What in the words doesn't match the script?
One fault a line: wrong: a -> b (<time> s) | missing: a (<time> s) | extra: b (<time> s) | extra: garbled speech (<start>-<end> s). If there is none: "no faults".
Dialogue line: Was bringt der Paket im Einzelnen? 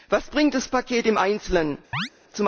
wrong: der -> das (0.5 s)